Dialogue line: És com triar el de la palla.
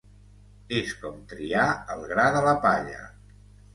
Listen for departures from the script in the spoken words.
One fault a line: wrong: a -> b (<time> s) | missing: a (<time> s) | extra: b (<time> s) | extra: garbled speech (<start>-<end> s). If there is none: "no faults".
extra: gra (2.1 s)